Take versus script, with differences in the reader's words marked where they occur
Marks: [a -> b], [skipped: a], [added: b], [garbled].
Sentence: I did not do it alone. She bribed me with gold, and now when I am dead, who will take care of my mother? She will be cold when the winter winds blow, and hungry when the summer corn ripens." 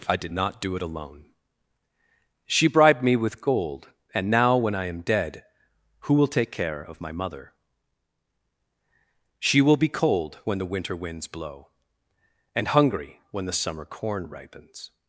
I did not do it alone. She bribed me with gold, and now when I am dead, who will take care of my mother? She will be cold when the winter winds blow, and hungry when the summer corn ripens."